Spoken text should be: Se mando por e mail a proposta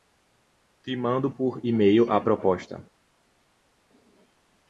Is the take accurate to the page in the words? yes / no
no